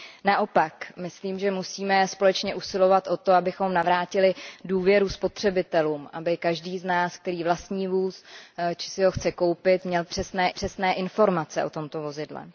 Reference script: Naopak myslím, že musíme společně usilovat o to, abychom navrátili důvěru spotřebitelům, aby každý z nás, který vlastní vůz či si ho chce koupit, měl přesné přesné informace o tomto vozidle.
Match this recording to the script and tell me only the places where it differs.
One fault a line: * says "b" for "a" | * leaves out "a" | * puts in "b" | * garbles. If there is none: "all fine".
all fine